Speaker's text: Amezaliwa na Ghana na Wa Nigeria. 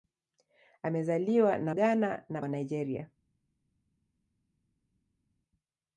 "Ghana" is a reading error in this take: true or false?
false